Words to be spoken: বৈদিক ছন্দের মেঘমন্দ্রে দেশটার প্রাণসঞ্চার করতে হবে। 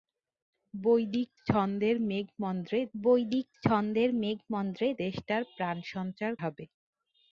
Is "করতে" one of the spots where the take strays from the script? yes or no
yes